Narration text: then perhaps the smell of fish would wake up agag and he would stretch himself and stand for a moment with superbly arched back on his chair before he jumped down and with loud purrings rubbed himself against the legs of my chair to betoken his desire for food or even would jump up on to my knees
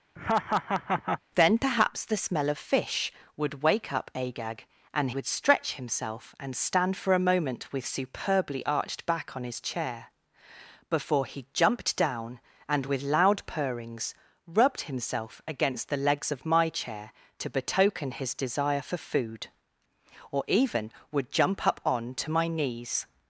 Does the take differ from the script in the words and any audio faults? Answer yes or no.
yes